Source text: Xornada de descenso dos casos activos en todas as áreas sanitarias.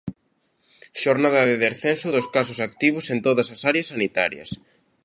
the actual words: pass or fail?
pass